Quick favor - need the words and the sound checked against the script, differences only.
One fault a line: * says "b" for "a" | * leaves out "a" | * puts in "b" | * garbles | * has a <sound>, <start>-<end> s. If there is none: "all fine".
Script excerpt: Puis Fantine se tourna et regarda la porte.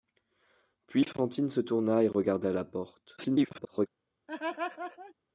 * garbles
* has a laugh, 4.3-5.1 s